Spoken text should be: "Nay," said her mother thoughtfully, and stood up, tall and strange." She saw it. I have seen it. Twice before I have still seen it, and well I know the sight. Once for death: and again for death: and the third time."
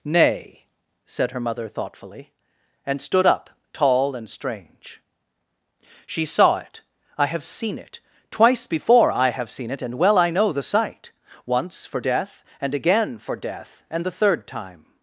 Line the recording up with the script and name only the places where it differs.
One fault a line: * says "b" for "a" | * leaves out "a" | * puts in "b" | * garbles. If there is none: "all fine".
* leaves out "still"